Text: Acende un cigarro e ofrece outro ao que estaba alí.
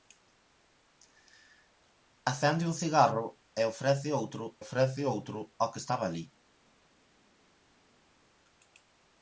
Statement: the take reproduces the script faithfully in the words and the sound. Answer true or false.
false